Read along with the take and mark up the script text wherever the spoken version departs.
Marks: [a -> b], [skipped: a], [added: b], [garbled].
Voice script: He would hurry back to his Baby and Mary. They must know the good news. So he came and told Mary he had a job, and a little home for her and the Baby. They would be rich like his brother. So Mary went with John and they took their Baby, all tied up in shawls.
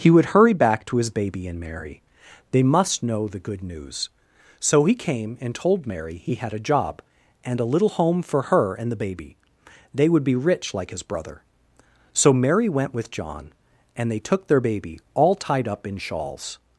He would hurry back to his Baby and Mary. They must know the good news. So he came and told Mary he had a job, and a little home for her and the Baby. They would be rich like his brother. So Mary went with John and they took their Baby, all tied up in shawls.